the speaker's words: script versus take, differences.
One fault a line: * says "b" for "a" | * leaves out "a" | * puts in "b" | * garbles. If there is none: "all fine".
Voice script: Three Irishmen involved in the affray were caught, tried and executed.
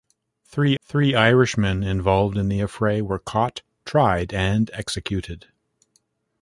* puts in "three"